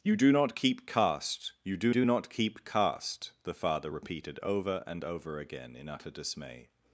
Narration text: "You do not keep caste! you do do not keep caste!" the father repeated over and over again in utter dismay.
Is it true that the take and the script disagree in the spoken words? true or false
false